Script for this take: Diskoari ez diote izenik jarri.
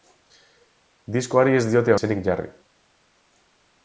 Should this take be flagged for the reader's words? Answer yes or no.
no